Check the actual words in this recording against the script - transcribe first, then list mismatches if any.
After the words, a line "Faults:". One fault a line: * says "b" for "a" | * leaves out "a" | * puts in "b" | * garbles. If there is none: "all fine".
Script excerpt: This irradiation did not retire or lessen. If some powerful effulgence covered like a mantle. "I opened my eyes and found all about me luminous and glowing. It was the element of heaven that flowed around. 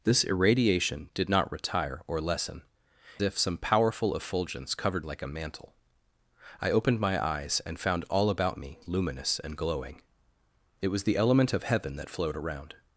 This irradiation did not retire or lessen. If some powerful effulgence covered like a mantle. "I opened my eyes and found all about me luminous and glowing. It was the element of heaven that flowed around.
Faults:
all fine